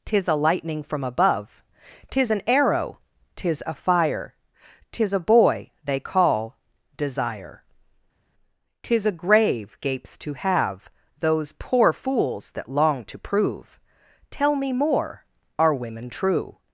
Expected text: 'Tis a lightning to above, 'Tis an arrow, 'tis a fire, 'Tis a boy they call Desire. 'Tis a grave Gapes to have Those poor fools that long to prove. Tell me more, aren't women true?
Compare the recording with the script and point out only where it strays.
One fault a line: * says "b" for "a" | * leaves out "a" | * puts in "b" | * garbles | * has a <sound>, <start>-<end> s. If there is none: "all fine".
* says "from" for "to"
* says "are" for "aren't"